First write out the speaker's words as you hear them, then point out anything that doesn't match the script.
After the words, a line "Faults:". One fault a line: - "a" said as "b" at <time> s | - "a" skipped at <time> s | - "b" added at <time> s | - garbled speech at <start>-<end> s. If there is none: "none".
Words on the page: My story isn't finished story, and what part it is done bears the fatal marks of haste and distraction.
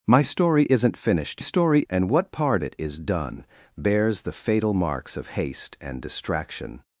My story isn't finished story, and what part it is done bears the fatal marks of haste and distraction.
Faults:
none